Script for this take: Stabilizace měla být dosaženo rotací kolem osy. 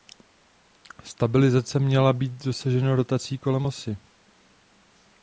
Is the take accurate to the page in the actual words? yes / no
yes